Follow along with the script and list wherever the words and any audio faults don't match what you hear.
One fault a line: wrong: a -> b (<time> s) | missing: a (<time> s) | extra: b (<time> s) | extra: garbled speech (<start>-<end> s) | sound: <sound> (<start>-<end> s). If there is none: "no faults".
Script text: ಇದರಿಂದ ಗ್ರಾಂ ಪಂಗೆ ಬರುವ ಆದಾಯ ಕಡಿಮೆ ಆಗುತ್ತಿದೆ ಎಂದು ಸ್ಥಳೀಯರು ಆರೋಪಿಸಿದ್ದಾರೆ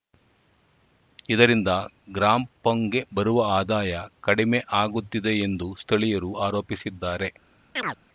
sound: chirp (7.8-8.0 s)